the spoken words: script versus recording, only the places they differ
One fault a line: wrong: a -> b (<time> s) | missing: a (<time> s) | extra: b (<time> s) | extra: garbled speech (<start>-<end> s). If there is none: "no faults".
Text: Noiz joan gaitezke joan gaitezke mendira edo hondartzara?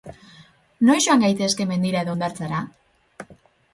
missing: joan gaitezke (1.7 s)